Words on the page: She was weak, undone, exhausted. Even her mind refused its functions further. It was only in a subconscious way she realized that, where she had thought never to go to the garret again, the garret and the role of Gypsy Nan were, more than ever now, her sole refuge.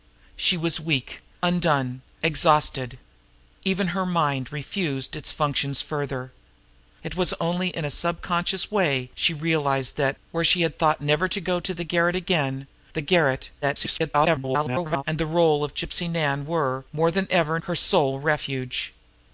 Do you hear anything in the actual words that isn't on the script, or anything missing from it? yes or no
yes